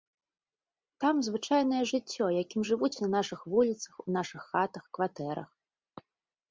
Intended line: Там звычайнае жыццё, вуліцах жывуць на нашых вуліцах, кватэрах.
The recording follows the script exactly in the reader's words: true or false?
false